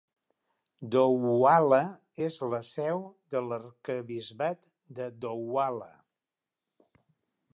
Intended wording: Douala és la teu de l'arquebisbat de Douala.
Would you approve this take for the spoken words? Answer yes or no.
no